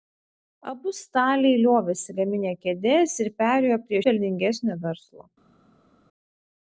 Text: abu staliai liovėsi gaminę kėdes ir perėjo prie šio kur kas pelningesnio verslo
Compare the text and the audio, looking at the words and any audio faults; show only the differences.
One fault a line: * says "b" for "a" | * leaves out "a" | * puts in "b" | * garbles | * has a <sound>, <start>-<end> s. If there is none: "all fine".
* leaves out "šio kur kas"